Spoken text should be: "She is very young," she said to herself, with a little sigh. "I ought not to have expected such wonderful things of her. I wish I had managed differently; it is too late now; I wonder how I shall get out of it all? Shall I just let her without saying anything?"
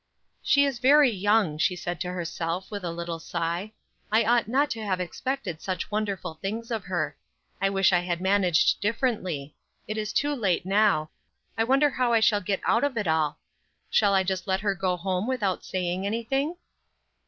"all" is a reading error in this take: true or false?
false